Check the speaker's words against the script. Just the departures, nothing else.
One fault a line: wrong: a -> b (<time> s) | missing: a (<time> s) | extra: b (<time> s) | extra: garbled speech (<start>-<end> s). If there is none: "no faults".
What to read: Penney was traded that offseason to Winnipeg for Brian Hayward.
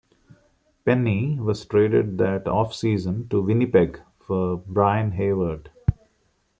no faults